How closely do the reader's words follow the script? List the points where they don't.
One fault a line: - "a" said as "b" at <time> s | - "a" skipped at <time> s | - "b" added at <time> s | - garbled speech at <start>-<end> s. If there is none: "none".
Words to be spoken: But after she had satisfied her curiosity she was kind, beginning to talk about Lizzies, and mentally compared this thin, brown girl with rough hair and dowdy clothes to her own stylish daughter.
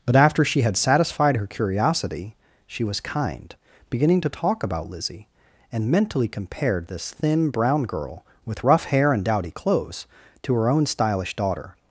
- "Lizzies" said as "Lizzie" at 4.9 s